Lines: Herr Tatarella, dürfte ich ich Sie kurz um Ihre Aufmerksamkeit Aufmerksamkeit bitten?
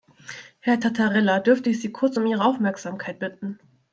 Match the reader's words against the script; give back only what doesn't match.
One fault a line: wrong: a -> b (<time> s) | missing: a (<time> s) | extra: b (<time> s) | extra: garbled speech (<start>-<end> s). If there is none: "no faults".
missing: ich (1.8 s)
missing: Aufmerksamkeit (3.2 s)